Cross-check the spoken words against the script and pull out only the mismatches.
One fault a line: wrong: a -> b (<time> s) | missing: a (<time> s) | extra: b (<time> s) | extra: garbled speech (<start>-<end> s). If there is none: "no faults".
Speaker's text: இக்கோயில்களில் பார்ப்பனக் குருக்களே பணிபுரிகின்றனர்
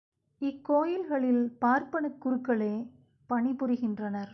no faults